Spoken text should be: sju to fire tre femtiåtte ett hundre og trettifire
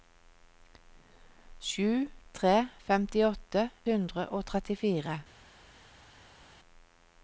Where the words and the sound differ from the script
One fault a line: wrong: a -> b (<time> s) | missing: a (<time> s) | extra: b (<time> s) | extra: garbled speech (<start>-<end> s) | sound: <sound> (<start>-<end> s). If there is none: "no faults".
missing: to fire (2.1 s)
missing: ett (3.7 s)